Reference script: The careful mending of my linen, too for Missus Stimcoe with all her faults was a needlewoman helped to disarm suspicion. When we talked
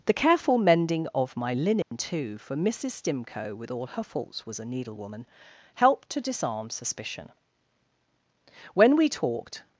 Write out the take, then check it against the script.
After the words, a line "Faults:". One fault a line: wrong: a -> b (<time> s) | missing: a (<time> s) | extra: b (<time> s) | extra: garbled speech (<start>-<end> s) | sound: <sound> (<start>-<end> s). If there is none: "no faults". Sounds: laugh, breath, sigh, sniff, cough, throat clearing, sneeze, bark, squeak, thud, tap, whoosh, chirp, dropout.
The careful mending of my linen, too for Missus Stimcoe with all her faults was a needlewoman helped to disarm suspicion. When we talked
Faults:
sound: dropout (1.8-1.9 s)